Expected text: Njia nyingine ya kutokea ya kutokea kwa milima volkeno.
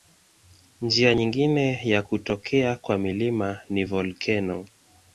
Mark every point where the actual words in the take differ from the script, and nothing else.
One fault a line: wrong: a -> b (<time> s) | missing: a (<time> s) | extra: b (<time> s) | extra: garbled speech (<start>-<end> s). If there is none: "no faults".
missing: ya kutokea (2.8 s)
extra: ni (3.7 s)